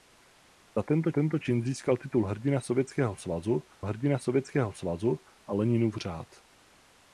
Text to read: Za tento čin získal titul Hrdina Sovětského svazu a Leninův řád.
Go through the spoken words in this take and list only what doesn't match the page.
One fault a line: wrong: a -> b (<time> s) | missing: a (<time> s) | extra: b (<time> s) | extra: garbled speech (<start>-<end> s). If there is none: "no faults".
extra: tento (1.1 s)
extra: Hrdina Sovětského svazu (3.8 s)